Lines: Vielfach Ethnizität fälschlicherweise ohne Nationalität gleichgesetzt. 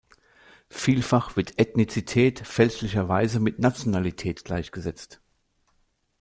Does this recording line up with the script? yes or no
no